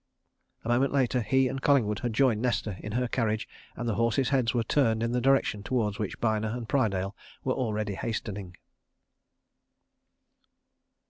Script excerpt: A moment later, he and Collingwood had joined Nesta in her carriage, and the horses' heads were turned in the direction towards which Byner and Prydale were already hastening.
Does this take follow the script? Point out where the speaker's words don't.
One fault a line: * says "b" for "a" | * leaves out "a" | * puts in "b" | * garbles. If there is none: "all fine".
all fine